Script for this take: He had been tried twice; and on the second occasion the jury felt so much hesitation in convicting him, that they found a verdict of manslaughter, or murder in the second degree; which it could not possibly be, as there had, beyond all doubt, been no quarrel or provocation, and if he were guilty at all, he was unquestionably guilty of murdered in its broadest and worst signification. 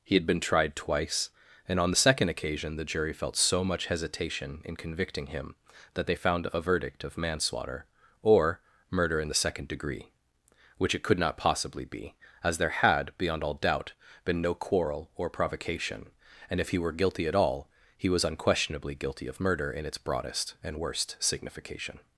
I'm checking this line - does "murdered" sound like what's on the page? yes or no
no